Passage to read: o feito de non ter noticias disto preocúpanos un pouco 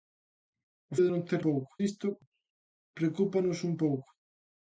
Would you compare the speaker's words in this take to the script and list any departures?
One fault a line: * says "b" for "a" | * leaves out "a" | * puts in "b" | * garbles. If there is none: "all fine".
* leaves out "feito"
* says "pouco" for "noticias"